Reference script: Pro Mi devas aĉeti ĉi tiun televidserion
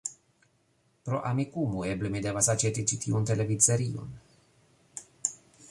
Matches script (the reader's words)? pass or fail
fail